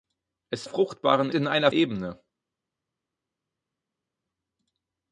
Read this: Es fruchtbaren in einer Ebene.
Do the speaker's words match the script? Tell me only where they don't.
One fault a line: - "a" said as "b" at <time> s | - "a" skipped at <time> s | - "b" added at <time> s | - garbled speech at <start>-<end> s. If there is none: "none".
none